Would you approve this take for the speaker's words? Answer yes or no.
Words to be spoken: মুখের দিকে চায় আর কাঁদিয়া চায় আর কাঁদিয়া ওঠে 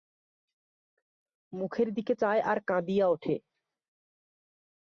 no